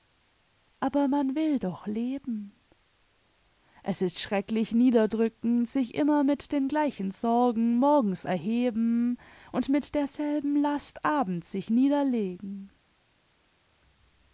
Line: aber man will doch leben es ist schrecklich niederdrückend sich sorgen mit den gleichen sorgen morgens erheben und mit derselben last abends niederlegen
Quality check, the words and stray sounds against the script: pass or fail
fail